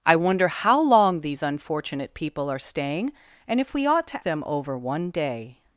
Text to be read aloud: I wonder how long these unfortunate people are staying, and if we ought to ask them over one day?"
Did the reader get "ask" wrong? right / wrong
wrong